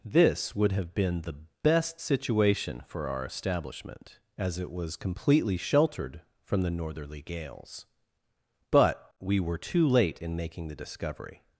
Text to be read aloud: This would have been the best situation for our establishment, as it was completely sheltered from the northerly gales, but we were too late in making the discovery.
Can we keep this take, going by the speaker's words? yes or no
yes